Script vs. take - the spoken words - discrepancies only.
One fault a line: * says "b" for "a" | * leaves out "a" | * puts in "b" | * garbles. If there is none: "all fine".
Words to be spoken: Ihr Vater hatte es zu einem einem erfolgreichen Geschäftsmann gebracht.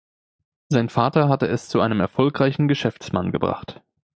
* says "Sein" for "Ihr"
* leaves out "einem"